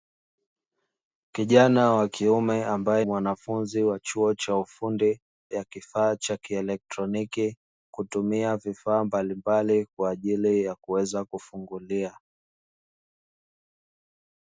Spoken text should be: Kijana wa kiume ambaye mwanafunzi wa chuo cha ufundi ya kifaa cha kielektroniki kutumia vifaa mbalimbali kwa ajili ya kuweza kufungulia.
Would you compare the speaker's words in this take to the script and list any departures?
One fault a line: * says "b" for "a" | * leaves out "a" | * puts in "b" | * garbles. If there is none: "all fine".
all fine